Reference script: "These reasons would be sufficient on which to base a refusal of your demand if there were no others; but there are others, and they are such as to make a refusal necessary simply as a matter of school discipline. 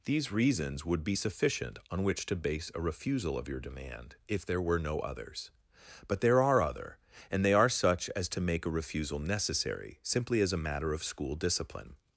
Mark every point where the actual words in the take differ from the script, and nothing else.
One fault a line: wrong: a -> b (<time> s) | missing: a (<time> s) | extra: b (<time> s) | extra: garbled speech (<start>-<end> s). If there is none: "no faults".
wrong: others -> other (6.6 s)